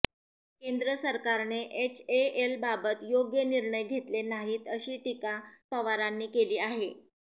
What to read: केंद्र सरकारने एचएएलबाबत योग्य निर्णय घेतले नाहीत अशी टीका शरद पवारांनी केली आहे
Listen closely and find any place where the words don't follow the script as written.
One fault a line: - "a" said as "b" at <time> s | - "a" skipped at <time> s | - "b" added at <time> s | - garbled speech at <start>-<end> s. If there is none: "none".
- "शरद" skipped at 5.4 s